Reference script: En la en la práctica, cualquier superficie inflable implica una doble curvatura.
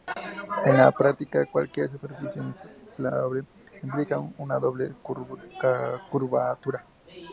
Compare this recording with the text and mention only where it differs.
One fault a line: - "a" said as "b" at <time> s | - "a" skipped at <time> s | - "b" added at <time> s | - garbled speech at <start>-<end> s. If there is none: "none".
- "en la" skipped at 0.9 s